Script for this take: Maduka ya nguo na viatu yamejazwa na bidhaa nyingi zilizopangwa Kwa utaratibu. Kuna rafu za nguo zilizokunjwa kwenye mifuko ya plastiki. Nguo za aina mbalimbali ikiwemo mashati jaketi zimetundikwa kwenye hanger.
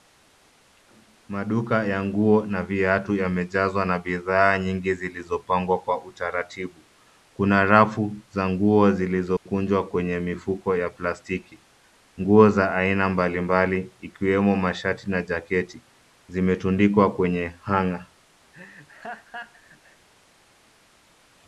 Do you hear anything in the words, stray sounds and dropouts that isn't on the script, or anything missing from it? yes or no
yes